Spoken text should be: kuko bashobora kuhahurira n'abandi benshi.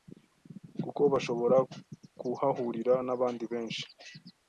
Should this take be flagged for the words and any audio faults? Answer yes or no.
no